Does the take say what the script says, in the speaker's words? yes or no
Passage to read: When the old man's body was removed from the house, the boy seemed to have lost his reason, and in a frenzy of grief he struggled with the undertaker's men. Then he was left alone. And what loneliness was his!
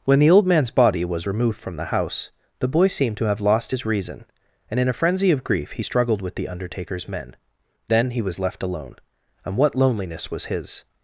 yes